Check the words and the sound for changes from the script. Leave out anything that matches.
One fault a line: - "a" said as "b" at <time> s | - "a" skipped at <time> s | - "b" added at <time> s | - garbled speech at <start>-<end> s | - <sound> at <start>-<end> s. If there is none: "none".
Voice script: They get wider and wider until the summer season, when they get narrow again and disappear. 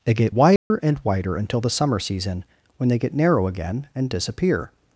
- dropout at 0.6-0.7 s